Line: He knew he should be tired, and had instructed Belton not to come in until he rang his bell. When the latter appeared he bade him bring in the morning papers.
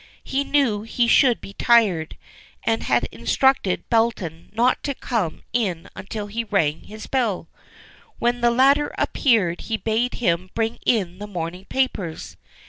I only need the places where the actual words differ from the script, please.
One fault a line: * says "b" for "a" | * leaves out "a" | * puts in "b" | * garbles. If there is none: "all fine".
all fine